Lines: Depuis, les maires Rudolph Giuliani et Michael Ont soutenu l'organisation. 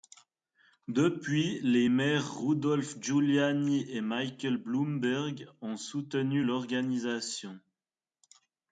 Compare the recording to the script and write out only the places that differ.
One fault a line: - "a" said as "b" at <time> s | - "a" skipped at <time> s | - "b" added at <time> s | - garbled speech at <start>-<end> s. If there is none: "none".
- "Bloomberg" added at 4.5 s